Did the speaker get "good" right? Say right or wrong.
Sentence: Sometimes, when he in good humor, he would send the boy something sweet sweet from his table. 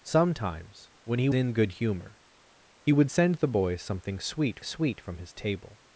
right